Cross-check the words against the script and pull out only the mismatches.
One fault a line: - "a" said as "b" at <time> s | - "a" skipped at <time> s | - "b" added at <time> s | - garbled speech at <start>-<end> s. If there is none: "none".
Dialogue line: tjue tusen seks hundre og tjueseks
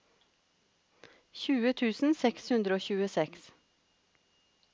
none